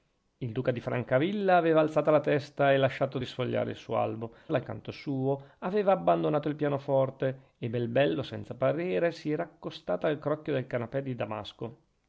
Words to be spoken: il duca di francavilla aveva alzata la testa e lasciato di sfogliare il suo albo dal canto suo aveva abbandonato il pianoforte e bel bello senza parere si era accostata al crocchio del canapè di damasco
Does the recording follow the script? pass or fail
pass